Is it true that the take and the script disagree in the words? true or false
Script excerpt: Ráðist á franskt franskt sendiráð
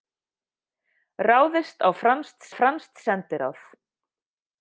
false